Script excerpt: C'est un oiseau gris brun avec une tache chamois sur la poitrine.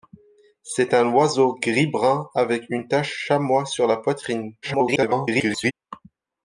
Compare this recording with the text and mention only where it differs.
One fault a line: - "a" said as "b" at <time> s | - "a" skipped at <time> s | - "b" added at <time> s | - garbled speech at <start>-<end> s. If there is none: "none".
- garbled speech at 4.6-5.7 s